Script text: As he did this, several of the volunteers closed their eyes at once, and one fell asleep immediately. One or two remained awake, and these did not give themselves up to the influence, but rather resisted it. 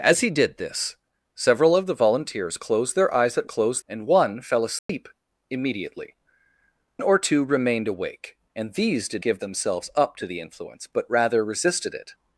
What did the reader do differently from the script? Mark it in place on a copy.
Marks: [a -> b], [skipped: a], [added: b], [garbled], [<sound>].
As he did this, several of the volunteers closed their eyes at [once, -> closed] and one fell asleep [dropout] immediately. [skipped: One] or two remained awake, and these did [skipped: not] give themselves up to the influence, but rather resisted it.